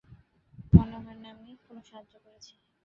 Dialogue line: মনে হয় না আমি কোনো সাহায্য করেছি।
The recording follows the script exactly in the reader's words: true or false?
true